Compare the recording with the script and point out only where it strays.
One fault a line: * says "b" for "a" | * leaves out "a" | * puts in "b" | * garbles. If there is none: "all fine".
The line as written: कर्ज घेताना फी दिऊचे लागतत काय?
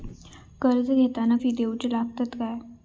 all fine